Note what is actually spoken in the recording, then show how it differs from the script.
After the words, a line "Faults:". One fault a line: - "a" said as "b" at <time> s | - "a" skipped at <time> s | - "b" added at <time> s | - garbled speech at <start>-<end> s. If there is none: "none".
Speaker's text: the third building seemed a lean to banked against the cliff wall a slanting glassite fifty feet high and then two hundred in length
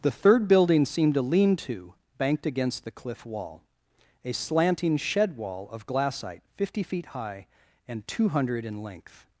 the third building seemed a lean to banked against the cliff wall a slanting shed wall of glassite fifty feet high and two hundred in length
Faults:
- "shed wall of" added at 5.0 s
- "then" skipped at 8.1 s